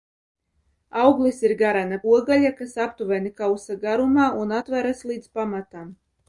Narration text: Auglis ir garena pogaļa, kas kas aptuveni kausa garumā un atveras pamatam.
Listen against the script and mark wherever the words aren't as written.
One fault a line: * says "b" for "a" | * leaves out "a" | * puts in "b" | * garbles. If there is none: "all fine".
* leaves out "kas"
* puts in "līdz"